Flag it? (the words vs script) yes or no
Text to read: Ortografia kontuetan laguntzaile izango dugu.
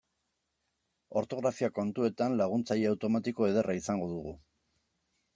yes